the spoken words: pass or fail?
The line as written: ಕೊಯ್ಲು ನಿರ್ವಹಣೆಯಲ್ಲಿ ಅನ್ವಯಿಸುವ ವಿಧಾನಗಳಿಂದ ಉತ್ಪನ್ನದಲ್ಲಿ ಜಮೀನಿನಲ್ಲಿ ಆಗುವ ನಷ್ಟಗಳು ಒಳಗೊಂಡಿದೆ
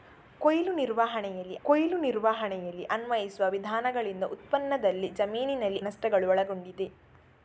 fail